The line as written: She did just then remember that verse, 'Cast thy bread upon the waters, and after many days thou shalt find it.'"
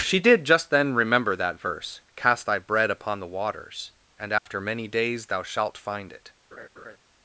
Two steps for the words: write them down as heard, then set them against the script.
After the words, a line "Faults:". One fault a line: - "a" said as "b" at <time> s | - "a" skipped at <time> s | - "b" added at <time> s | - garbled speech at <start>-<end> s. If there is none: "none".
She did just then remember that verse, 'Cast thy bread upon the waters, and after many days thou shalt find it.'"
Faults:
none